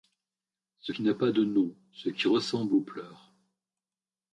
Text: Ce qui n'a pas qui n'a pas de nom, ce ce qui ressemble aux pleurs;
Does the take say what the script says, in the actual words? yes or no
no